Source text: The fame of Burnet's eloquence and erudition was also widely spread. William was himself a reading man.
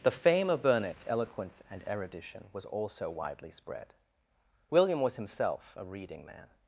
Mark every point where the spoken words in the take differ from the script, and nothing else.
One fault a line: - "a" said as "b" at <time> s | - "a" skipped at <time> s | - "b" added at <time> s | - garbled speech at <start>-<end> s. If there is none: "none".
none